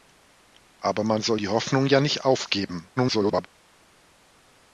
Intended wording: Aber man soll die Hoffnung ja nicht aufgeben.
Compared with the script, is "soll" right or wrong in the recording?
right